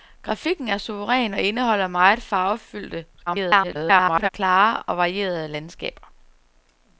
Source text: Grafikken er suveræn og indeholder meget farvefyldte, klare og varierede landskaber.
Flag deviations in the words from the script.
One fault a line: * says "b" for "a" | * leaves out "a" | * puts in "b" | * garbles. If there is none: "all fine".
* garbles